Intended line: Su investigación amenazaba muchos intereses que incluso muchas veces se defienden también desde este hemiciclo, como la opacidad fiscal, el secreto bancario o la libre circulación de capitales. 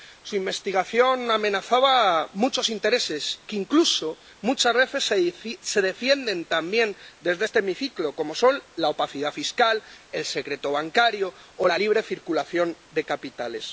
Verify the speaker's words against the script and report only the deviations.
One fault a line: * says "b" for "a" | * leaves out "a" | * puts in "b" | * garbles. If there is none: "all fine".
* puts in "son"